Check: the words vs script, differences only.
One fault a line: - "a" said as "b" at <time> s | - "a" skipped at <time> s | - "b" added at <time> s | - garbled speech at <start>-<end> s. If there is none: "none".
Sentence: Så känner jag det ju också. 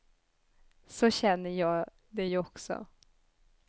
none